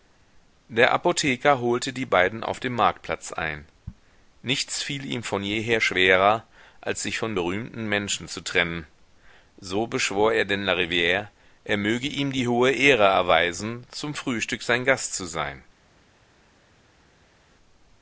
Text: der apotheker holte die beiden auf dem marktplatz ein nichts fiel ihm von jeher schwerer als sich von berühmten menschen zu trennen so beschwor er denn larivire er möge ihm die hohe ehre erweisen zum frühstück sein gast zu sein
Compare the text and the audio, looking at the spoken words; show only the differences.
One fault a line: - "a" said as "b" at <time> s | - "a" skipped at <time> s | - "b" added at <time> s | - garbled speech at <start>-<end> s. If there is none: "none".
none